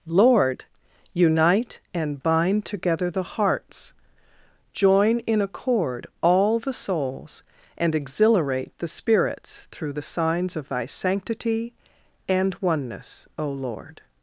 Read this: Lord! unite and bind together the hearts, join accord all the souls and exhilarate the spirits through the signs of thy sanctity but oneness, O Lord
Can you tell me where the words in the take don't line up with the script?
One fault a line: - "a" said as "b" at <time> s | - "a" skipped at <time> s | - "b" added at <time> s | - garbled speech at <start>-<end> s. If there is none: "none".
- "in" added at 5.2 s
- "but" said as "and" at 12.3 s